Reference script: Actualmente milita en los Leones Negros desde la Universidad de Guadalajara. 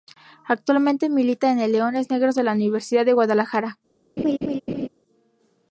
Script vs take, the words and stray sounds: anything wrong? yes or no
yes